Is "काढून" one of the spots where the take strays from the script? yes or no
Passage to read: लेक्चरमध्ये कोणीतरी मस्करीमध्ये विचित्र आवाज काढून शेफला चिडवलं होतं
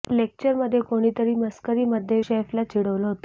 yes